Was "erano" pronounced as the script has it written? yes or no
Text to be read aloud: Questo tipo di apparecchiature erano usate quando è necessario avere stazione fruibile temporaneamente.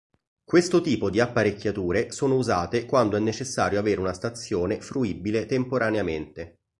no